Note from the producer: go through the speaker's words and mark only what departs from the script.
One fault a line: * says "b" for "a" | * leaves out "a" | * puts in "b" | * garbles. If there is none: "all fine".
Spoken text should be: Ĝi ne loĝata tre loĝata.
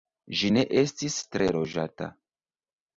* says "estis" for "loĝata"